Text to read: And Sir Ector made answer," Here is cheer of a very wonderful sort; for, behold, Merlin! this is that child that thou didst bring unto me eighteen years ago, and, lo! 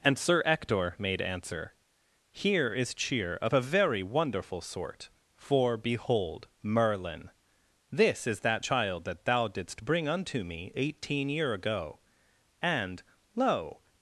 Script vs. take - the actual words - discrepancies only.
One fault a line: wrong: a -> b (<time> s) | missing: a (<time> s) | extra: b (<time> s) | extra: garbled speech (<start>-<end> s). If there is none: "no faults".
wrong: years -> year (11.3 s)